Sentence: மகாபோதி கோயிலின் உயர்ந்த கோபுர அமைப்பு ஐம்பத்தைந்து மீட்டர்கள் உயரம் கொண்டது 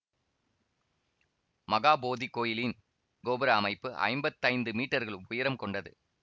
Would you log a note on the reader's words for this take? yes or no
yes